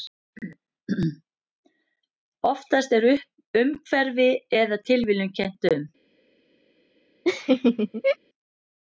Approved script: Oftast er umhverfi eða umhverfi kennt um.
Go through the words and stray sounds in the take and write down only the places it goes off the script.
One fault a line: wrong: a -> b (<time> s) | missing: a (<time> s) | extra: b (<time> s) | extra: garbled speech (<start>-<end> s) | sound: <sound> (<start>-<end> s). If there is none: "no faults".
wrong: umhverfi -> tilviljun (4.9 s)
sound: laugh (7.2-8.2 s)